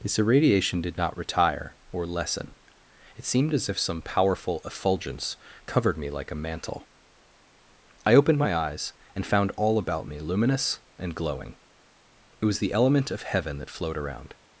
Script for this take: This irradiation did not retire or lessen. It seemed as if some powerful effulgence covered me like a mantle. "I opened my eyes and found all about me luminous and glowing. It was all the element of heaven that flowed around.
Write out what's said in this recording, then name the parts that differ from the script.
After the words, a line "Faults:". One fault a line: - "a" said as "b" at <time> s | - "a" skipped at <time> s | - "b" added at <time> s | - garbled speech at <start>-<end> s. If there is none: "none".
This irradiation did not retire or lessen. It seemed as if some powerful effulgence covered me like a mantle. "I opened my eyes and found all about me luminous and glowing. It was the element of heaven that flowed around.
Faults:
- "all" skipped at 12.6 s